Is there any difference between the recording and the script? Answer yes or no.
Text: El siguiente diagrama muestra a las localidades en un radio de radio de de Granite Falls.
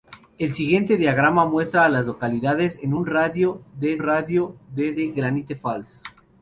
no